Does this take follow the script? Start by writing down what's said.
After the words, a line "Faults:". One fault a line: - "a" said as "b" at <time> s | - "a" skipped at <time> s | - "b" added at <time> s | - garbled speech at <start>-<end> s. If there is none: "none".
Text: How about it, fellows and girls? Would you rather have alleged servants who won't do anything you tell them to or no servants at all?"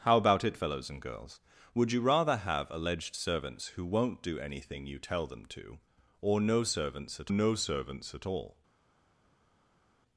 How about it, fellows and girls? Would you rather have alleged servants who won't do anything you tell them to or no servants at no servants at all?"
Faults:
- "no servants at" added at 7.3 s